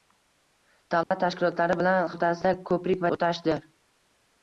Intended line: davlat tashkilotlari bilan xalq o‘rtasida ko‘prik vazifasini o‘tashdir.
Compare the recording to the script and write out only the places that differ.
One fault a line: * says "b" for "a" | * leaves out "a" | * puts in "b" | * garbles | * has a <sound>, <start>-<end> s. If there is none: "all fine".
* has a dropout, 1.0-1.1 s
* leaves out "xalq"
* leaves out "vazifasini"